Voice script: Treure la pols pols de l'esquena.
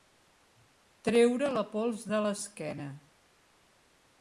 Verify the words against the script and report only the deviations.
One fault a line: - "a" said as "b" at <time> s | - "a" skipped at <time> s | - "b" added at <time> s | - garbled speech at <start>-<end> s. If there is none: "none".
- "pols" skipped at 2.1 s